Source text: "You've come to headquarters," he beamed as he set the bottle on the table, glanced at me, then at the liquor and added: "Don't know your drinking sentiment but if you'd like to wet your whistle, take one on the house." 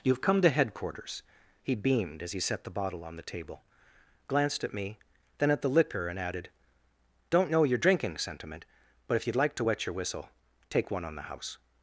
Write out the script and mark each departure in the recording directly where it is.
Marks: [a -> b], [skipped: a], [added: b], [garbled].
"You've come to headquarters," he beamed as he set the bottle on the table, glanced at me, then at the liquor and added: "Don't know your drinking sentiment but if you'd like to wet your whistle, take one on the house."